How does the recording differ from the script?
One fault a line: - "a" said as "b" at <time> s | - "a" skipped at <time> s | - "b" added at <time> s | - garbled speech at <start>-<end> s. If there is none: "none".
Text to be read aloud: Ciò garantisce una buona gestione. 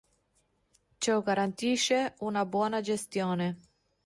none